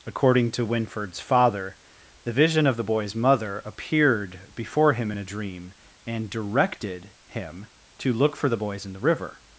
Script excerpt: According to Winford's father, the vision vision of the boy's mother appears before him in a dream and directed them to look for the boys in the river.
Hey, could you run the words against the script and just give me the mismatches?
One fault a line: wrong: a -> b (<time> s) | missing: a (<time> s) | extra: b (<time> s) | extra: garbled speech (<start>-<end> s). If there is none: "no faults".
missing: vision (2.6 s)
wrong: appears -> appeared (3.6 s)
wrong: them -> him (7.3 s)